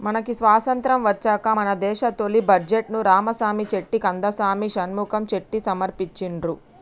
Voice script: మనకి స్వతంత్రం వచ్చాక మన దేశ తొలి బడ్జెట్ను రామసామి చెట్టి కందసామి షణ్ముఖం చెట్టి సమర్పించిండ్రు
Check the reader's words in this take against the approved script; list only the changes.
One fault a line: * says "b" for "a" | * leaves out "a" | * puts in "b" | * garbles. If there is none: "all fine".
all fine